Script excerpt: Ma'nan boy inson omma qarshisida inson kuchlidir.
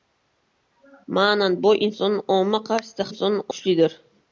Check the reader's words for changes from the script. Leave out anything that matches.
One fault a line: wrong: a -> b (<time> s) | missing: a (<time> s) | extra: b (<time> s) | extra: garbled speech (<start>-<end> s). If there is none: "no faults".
no faults